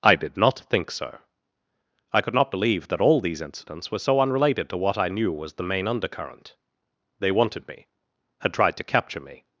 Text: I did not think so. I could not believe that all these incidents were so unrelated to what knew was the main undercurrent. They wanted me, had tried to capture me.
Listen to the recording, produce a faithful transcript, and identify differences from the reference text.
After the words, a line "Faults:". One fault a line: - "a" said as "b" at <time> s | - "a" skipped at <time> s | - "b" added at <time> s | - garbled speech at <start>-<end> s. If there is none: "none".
I did not think so. I could not believe that all these incidents were so unrelated to what I knew was the main undercurrent. They wanted me, had tried to capture me.
Faults:
- "I" added at 5.0 s